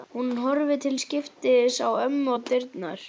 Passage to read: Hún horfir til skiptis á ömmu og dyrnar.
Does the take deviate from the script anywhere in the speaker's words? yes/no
no